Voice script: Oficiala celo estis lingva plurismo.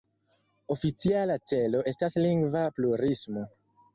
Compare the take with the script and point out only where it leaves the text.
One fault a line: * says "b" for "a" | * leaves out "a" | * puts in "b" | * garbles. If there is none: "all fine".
* says "estas" for "estis"